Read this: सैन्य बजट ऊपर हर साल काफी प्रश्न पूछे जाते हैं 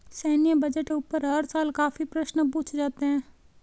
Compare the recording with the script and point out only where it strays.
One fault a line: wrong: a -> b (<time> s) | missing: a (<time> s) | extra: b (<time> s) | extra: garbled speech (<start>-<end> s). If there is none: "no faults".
no faults